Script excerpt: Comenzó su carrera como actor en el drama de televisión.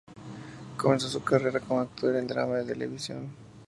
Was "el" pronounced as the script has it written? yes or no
no